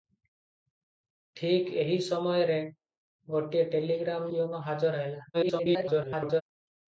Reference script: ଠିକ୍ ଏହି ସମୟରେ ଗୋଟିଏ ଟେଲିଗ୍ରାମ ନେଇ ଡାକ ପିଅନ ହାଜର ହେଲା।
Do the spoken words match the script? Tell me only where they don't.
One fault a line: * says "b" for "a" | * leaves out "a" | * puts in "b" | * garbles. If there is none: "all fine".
* leaves out "ନେଇ ଡାକ"
* garbles